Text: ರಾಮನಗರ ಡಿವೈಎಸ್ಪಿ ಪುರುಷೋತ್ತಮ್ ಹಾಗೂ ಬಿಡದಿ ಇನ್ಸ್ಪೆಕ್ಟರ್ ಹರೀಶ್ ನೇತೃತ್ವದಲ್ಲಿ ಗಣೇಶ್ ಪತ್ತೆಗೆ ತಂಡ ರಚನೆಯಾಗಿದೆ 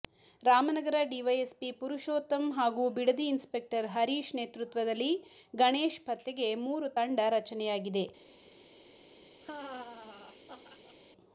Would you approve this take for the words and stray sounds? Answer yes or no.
no